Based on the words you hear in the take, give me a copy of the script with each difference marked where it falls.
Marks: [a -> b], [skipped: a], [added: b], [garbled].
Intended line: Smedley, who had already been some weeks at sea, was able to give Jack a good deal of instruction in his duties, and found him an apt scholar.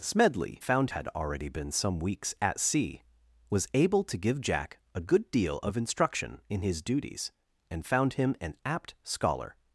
Smedley, [who -> found] had already been some weeks at sea, was able to give Jack a good deal of instruction in his duties, and found him an apt scholar.